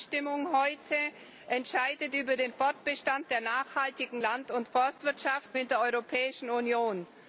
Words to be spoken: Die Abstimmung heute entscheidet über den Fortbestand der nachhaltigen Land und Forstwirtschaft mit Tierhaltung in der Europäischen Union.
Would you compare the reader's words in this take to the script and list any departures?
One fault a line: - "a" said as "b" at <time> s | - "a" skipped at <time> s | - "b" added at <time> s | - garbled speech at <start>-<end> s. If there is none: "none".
- "mit Tierhaltung" skipped at 5.6 s